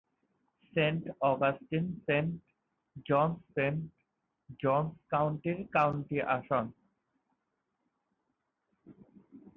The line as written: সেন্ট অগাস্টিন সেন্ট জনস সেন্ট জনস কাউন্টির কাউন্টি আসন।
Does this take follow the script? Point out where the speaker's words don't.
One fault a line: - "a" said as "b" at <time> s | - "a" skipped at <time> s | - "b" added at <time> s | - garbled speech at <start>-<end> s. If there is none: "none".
none